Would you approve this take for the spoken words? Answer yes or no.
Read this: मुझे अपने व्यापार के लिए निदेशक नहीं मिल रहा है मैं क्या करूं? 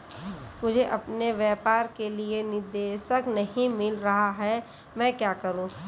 yes